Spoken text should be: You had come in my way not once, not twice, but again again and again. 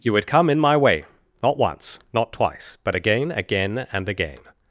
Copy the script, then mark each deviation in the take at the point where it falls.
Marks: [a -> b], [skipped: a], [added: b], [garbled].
You had come in my way not once, not twice, but again again and again.